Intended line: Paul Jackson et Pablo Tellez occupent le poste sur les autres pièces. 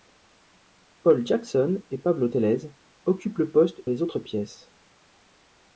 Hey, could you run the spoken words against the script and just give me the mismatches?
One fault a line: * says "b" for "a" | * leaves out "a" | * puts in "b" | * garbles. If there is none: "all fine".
* leaves out "sur"